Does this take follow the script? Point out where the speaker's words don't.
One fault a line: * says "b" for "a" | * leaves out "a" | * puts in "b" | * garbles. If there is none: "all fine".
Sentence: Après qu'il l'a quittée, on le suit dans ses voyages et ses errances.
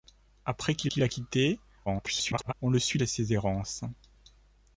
* puts in "qu'il"
* garbles
* leaves out "dans ses voyages"